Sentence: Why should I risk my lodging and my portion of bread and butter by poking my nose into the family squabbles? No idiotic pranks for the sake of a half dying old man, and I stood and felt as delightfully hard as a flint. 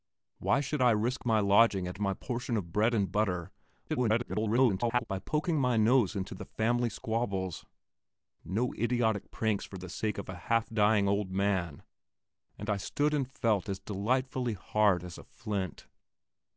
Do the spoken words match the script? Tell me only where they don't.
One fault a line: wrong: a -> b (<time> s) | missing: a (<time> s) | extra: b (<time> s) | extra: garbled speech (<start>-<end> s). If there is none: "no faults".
extra: garbled speech (3.9-5.0 s)